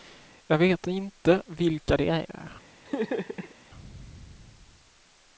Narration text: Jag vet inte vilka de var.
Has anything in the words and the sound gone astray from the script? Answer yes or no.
yes